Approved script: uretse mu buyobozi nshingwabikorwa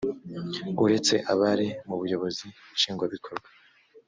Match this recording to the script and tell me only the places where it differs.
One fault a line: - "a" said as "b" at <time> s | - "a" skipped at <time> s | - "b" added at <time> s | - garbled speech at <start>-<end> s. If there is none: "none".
- "abari" added at 1.3 s